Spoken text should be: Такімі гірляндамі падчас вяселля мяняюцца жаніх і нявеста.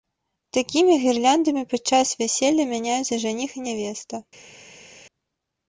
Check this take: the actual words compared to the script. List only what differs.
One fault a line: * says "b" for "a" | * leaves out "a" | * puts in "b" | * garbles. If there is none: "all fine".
all fine